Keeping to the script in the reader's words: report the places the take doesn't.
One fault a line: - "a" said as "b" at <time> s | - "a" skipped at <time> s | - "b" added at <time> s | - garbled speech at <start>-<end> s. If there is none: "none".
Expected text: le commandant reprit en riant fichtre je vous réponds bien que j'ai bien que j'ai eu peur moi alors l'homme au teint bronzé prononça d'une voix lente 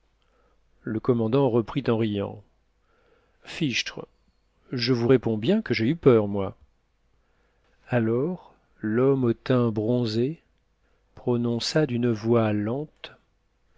- "bien que j'ai" skipped at 5.9 s